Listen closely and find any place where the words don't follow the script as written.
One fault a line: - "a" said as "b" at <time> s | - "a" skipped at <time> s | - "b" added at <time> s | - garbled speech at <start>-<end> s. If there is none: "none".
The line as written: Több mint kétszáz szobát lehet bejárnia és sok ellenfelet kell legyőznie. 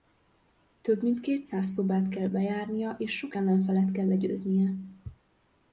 - "lehet" said as "kell" at 2.1 s